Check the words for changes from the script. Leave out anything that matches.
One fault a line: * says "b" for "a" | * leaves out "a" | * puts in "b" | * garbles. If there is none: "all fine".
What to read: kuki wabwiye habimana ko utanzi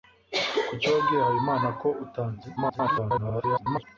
* garbles